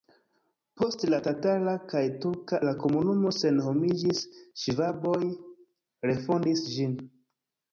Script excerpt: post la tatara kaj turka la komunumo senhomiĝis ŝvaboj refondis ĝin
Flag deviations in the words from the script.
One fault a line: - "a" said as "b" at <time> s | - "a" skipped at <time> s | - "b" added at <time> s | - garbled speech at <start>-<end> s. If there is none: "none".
none